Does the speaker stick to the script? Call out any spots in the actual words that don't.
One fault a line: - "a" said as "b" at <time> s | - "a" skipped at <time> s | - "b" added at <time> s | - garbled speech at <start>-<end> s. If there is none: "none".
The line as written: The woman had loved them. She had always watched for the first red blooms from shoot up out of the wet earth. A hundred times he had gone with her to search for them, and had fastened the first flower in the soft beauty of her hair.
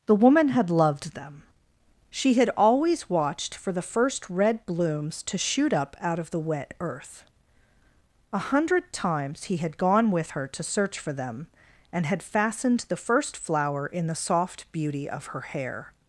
- "from" said as "to" at 5.2 s